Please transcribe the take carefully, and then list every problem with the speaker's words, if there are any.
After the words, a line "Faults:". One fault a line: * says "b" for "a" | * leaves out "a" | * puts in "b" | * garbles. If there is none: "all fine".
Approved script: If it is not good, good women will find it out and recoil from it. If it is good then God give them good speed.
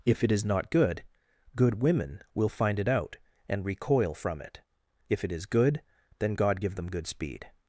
If it is not good, good women will find it out and recoil from it. If it is good then God give them good speed.
Faults:
all fine